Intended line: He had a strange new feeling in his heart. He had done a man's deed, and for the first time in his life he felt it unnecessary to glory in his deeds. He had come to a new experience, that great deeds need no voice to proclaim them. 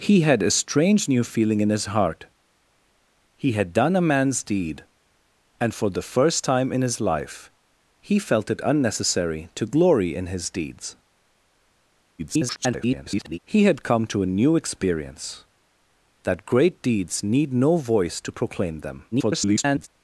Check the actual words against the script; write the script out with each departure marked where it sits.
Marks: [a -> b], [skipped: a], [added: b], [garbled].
He had a strange new feeling in his heart. He had done a man's deed, and for the first time in his life he felt it unnecessary to glory in his deeds. [garbled] He had come to a new experience, that great deeds need no voice to proclaim them. [garbled]